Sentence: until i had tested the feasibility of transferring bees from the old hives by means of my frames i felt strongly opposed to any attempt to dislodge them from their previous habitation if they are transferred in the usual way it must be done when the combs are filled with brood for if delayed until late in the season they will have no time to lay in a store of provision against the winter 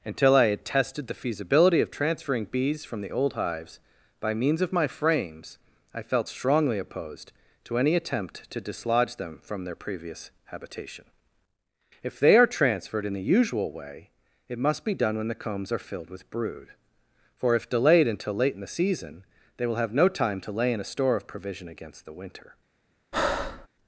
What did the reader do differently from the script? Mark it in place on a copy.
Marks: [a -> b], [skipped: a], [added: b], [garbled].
until i had tested the feasibility of transferring bees from the old hives by means of my frames i felt strongly opposed to any attempt to dislodge them from their previous habitation if they are transferred in the usual way it must be done when the combs are filled with brood for if delayed until late in the season they will have no time to lay in a store of provision against the winter